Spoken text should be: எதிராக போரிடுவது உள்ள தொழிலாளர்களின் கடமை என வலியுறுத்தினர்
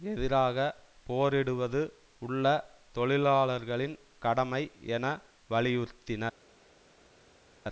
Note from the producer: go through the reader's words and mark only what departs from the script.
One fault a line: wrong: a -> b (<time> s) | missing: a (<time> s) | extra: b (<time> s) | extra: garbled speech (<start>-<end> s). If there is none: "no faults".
no faults